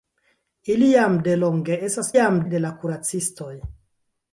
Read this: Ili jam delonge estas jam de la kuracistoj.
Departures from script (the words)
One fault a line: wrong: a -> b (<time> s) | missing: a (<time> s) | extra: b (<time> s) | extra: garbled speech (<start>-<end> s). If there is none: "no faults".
no faults